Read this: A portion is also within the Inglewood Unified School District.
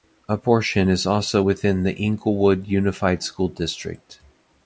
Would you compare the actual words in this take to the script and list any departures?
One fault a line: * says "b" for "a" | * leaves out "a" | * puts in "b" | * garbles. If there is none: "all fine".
all fine